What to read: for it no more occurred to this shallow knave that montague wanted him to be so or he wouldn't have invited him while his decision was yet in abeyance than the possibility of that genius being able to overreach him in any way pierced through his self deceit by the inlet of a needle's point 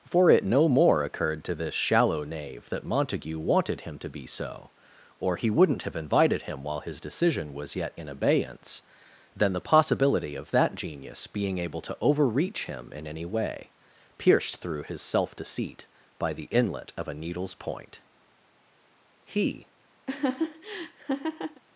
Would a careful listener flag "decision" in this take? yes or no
no